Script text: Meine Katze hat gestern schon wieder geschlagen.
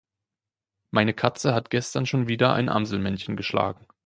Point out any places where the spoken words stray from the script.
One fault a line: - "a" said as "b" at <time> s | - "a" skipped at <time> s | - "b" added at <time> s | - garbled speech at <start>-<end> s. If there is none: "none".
- "ein Amselmännchen" added at 2.5 s